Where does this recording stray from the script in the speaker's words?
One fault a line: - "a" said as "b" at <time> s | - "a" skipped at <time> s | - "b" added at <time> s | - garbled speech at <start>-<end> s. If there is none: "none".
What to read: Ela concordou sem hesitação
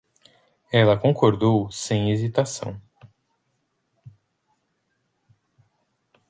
none